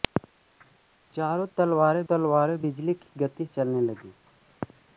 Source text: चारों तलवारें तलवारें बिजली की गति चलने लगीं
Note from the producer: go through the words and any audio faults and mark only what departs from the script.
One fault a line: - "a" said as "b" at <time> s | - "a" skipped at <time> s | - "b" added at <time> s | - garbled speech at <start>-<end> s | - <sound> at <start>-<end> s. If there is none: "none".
none